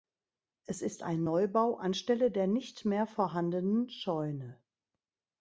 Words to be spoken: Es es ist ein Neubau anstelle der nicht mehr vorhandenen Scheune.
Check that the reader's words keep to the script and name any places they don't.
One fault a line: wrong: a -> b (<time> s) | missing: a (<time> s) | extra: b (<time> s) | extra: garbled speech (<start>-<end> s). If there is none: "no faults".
missing: es (0.8 s)